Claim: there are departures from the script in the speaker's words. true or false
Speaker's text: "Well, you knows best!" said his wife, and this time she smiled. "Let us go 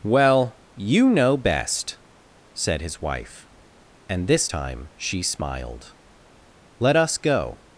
true